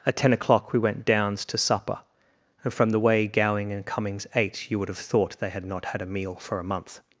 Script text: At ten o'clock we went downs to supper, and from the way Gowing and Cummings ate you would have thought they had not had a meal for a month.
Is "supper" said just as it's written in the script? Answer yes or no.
yes